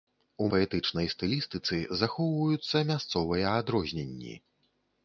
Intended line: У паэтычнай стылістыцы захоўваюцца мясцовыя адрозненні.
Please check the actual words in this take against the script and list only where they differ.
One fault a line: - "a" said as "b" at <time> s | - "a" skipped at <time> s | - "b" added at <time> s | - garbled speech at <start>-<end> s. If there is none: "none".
none